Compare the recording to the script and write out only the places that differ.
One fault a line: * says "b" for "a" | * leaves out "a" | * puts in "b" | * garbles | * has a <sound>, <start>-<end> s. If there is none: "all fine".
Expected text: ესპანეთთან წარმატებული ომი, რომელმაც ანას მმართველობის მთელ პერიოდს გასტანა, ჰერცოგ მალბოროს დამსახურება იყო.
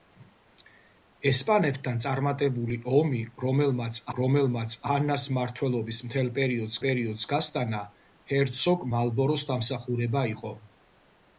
* puts in "რომელმაც"
* puts in "პერიოდს"